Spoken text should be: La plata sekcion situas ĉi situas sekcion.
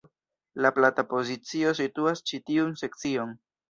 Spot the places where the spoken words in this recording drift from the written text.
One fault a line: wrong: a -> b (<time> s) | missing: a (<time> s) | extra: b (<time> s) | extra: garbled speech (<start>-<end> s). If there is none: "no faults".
wrong: sekcion -> pozicio (1.1 s)
wrong: situas -> tiun (2.5 s)